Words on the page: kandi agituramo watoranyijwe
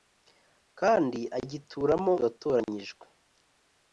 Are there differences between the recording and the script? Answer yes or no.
no